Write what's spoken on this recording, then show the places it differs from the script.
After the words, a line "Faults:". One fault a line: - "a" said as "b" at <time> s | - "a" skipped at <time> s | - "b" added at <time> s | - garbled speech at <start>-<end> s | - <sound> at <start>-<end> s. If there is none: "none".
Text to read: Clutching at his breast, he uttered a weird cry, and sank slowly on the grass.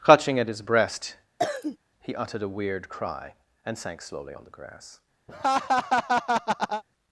Clutching at his breast, he uttered a weird cry, and sank slowly on the grass.
Faults:
- cough at 1.4-1.8 s
- laugh at 5.3-6.8 s